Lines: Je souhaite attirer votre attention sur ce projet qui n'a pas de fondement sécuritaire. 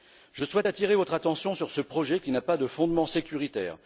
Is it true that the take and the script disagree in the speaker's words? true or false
false